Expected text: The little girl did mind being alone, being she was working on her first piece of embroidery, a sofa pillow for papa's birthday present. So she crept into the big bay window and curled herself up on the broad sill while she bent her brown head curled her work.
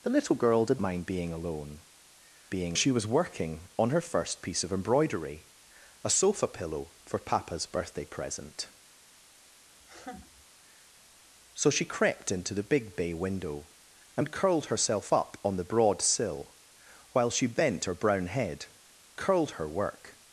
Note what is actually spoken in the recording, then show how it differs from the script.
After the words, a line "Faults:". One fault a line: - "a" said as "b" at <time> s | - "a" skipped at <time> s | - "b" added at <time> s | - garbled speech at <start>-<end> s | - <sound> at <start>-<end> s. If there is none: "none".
The little girl did mind being alone, being she was working on her first piece of embroidery, a sofa pillow for papa's birthday present. So she crept into the big bay window and curled herself up on the broad sill while she bent her brown head curled her work.
Faults:
- laugh at 9.8-10.5 s